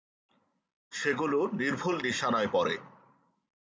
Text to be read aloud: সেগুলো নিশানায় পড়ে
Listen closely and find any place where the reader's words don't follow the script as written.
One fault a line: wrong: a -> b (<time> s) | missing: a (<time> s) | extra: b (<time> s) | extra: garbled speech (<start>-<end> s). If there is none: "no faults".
extra: নির্ভুল (1.5 s)